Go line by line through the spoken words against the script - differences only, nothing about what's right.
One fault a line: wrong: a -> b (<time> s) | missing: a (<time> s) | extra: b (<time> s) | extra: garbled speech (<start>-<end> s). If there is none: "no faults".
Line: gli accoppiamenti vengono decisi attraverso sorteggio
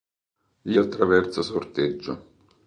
missing: accoppiamenti vengono decisi (0.8 s)